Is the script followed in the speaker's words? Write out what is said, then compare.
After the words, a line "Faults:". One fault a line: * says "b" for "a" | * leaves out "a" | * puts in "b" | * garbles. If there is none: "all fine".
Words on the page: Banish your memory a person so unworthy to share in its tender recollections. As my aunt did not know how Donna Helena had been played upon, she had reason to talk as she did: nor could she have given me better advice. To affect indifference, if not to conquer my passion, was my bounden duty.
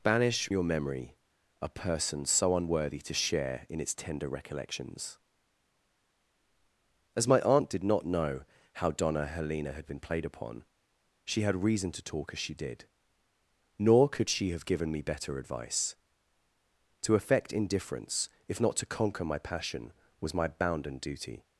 Banish your memory a person so unworthy to share in its tender recollections. As my aunt did not know how Donna Helena had been played upon, she had reason to talk as she did: nor could she have given me better advice. To affect indifference, if not to conquer my passion, was my bounden duty.
Faults:
all fine